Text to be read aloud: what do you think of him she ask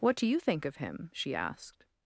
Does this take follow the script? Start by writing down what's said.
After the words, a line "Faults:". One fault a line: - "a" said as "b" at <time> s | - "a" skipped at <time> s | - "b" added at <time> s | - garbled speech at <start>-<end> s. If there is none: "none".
what do you think of him she asked
Faults:
- "ask" said as "asked" at 1.4 s